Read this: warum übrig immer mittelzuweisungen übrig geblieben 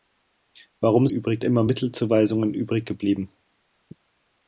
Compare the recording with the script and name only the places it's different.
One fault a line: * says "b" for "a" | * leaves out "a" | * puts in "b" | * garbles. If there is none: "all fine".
all fine